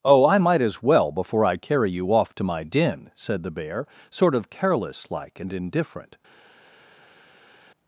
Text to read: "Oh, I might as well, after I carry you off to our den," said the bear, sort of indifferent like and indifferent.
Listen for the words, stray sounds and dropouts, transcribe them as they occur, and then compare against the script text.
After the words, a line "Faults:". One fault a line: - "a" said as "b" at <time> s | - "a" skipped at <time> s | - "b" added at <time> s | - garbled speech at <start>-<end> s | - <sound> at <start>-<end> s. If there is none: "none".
"Oh, I might as well, before I carry you off to my den," said the bear, sort of careless like and indifferent.
Faults:
- "after" said as "before" at 1.1 s
- "our" said as "my" at 2.4 s
- "indifferent" said as "careless" at 4.5 s